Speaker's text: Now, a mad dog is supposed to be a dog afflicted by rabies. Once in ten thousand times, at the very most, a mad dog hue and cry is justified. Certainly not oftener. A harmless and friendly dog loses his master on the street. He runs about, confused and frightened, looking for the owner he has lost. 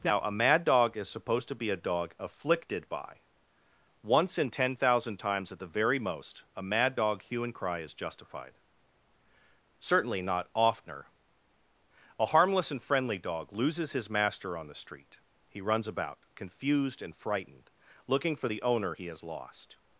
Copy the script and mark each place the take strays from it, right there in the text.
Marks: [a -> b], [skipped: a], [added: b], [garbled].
Now, a mad dog is supposed to be a dog afflicted by [skipped: rabies.] Once in ten thousand times, at the very most, a mad dog hue and cry is justified. Certainly not oftener. A harmless and friendly dog loses his master on the street. He runs about, confused and frightened, looking for the owner he has lost.